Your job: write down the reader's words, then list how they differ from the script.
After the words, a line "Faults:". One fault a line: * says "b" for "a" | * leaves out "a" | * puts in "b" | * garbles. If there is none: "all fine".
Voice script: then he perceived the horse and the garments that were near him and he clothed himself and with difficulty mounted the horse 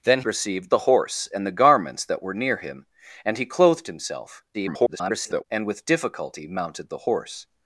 then perceived the horse and the garments that were near him and he clothed himself [garbled] and with difficulty mounted the horse
Faults:
* leaves out "he"
* garbles